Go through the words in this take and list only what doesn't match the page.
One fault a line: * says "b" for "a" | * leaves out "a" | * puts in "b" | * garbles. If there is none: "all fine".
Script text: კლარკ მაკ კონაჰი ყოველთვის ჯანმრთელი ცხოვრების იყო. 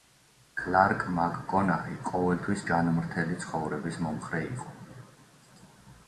* puts in "მომხრე"